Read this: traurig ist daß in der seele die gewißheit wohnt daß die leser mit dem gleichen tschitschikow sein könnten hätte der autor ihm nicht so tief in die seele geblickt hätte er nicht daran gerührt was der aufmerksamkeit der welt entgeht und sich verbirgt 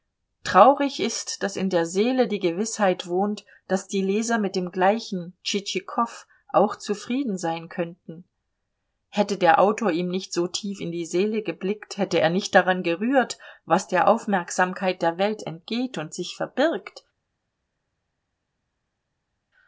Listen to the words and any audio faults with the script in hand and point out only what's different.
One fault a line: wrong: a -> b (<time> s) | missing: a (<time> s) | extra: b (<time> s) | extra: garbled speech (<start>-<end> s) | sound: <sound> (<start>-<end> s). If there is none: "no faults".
extra: auch zufrieden (6.5 s)